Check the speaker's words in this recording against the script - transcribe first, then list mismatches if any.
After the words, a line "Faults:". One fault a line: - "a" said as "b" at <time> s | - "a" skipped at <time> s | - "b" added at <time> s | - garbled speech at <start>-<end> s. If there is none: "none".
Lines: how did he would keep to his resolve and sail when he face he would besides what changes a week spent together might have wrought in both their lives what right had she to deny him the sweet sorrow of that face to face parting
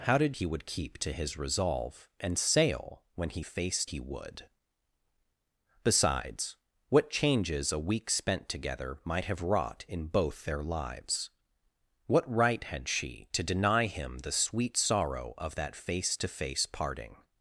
how did he would keep to his resolve and sail when he face he would besides what changes a week spent together might have wrought in both their lives what right had she to deny him the sweet sorrow of that face to face parting
Faults:
none